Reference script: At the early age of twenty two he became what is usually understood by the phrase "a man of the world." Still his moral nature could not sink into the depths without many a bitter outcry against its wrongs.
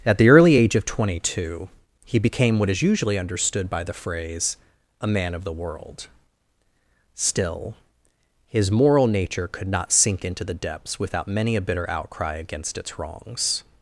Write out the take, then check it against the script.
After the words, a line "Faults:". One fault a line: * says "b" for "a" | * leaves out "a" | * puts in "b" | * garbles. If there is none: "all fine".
At the early age of twenty two he became what is usually understood by the phrase "a man of the world." Still his moral nature could not sink into the depths without many a bitter outcry against its wrongs.
Faults:
all fine